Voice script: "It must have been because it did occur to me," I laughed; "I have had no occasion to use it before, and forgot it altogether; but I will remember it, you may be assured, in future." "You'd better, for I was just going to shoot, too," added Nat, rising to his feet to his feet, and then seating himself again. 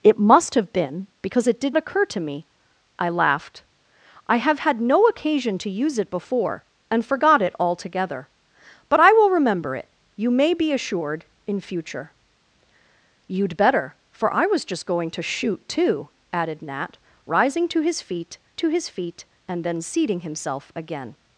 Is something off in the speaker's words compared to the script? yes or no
no